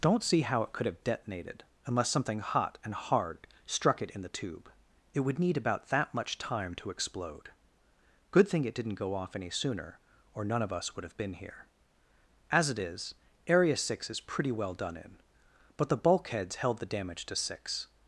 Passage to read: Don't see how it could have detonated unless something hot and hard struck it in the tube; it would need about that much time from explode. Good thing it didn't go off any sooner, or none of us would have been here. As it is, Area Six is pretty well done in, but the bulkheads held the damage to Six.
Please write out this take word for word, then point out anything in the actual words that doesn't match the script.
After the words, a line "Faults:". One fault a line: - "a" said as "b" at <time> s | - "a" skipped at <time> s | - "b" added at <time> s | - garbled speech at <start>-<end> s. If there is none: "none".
Don't see how it could have detonated unless something hot and hard struck it in the tube; it would need about that much time to explode. Good thing it didn't go off any sooner, or none of us would have been here. As it is, Area Six is pretty well done in, but the bulkheads held the damage to Six.
Faults:
- "from" said as "to" at 6.7 s